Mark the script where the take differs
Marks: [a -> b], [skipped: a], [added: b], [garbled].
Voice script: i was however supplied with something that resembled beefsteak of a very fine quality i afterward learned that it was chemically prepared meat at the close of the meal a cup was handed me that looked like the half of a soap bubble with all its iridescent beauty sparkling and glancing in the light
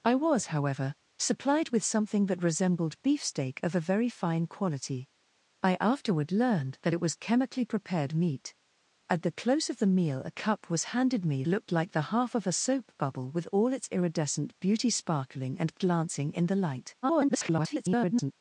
i was however supplied with something that resembled beefsteak of a very fine quality i afterward learned that it was chemically prepared meat at the close of the meal a cup was handed me [skipped: that] looked like the half of a soap bubble with all its iridescent beauty sparkling and glancing in the light [garbled]